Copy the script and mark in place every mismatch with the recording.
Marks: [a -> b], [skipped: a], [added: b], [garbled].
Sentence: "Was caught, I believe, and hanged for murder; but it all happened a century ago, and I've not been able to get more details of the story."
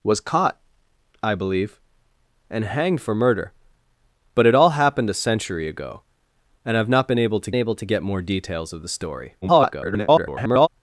"Was caught, I believe, and hanged for murder; but it all happened a century ago, and I've not been able to [added: able to] get more details of the story." [garbled]